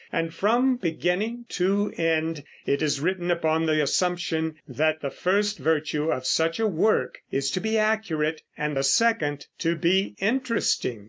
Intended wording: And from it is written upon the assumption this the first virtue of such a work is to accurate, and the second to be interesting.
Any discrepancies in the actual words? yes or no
yes